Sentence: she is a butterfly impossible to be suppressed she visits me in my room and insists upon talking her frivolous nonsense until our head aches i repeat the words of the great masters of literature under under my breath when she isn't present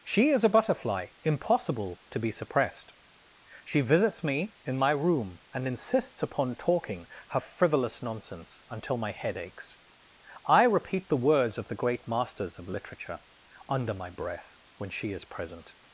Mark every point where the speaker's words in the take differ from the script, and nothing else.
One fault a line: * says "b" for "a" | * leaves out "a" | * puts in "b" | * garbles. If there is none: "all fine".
* says "my" for "our"
* leaves out "under"
* says "is" for "isn't"